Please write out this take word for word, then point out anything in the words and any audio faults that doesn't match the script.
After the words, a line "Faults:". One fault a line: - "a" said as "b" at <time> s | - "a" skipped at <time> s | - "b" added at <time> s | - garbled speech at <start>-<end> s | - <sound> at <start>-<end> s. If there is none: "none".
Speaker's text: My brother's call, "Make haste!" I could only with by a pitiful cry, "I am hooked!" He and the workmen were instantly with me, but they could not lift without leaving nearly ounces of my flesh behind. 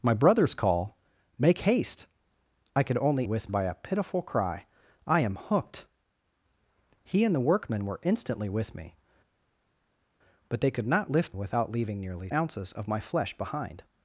My brother's call, "Make haste!" I could only with by a pitiful cry, "I am hooked!" He and the workmen were instantly with me, but they could not lift without leaving nearly ounces of my flesh behind.
Faults:
none